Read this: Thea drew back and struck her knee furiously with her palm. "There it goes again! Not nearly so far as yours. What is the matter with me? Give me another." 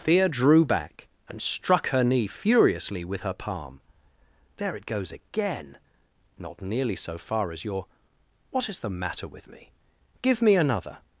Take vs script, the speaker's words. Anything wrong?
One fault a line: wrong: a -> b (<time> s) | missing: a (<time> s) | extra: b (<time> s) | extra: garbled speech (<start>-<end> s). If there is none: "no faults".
wrong: yours -> your (7.6 s)